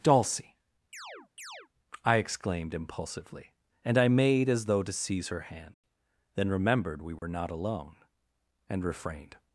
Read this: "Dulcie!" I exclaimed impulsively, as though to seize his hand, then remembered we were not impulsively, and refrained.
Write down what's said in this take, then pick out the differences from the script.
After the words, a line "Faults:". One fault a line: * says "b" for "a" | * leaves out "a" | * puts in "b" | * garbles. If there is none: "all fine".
"Dulcie!" I exclaimed impulsively, and I made as though to seize her hand, then remembered we were not alone, and refrained.
Faults:
* puts in "and I made"
* says "her" for "his"
* says "alone" for "impulsively"